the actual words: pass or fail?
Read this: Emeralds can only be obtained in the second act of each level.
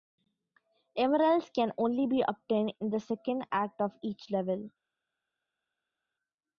pass